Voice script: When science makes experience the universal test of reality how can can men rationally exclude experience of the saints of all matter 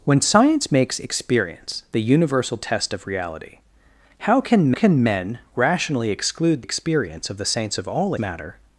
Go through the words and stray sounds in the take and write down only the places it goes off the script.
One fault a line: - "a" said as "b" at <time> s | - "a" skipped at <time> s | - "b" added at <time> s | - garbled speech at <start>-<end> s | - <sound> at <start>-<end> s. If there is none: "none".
none